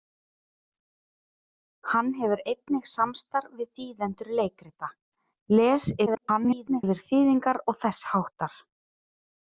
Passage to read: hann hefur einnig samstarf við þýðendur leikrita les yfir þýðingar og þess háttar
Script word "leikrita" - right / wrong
right